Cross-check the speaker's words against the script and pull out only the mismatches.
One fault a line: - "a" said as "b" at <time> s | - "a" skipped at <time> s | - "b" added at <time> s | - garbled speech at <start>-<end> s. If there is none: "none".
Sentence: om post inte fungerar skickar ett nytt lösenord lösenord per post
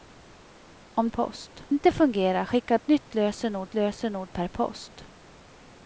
none